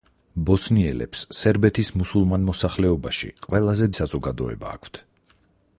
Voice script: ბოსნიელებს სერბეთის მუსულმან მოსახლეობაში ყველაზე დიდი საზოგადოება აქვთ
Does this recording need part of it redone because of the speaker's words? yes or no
yes